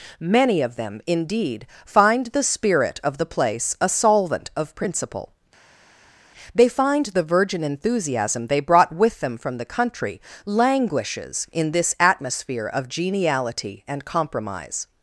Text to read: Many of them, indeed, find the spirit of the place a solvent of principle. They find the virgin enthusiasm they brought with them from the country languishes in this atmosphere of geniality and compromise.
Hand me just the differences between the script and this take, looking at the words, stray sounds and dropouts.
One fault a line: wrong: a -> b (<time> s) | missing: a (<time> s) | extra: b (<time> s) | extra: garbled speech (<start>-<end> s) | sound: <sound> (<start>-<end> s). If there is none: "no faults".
no faults